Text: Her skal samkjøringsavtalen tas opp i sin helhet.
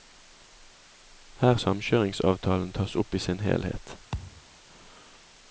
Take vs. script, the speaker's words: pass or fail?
fail